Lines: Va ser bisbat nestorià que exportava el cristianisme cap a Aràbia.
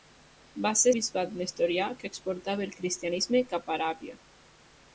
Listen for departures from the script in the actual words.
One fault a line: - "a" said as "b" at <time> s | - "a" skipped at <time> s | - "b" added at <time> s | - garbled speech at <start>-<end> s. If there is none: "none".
none